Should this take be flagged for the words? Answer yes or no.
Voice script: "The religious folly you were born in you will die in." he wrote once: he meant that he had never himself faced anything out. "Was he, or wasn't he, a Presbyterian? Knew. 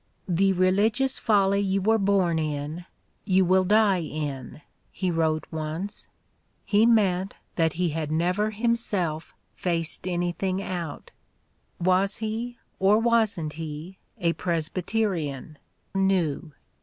no